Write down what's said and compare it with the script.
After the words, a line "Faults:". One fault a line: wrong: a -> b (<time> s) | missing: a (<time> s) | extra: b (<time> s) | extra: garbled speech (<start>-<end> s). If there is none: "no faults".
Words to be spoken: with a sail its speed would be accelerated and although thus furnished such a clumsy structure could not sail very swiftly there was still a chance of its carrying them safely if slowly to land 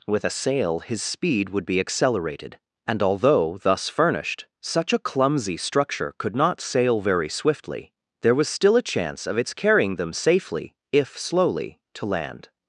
with a sail his speed would be accelerated and although thus furnished such a clumsy structure could not sail very swiftly there was still a chance of its carrying them safely if slowly to land
Faults:
wrong: its -> his (0.8 s)